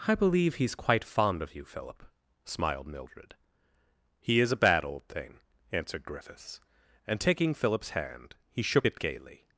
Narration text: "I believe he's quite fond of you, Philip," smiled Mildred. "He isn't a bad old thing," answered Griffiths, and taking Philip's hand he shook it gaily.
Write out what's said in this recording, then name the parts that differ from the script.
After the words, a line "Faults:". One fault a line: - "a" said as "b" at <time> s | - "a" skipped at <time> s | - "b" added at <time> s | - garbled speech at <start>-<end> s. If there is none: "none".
"I believe he's quite fond of you, Philip," smiled Mildred. "He is a bad old thing," answered Griffiths, and taking Philip's hand he shook it gaily.
Faults:
- "isn't" said as "is" at 4.4 s